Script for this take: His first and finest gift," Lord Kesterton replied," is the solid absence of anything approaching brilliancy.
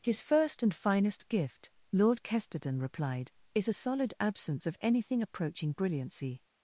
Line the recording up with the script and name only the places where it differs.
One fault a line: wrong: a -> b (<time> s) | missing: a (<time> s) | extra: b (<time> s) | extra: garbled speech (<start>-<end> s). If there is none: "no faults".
wrong: the -> a (3.7 s)